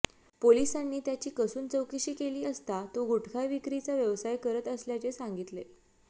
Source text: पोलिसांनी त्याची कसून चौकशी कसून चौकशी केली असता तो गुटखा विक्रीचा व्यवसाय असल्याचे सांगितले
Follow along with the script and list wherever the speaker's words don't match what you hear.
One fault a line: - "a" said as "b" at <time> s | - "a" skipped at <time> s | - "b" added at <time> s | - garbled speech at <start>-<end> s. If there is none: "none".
- "कसून चौकशी" skipped at 2.1 s
- "करत" added at 4.4 s